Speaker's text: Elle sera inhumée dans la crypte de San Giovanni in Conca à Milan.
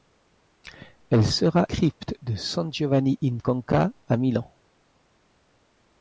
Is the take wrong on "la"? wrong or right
wrong